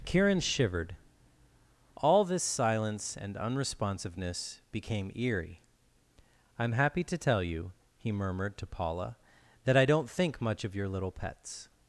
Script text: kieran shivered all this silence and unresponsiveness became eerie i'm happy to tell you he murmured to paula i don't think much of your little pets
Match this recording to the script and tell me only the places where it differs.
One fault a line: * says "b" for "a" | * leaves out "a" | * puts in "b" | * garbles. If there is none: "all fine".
* puts in "that"